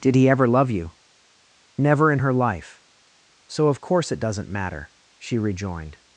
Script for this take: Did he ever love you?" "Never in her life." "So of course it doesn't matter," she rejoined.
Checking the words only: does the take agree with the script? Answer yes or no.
yes